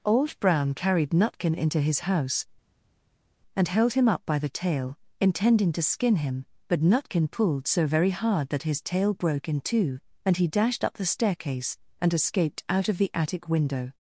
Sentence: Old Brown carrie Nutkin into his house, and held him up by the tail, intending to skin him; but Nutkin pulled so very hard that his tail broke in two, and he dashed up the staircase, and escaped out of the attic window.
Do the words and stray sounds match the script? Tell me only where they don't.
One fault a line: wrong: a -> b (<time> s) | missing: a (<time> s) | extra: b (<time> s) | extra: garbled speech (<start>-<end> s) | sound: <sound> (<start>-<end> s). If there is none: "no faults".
wrong: carrie -> carried (0.7 s)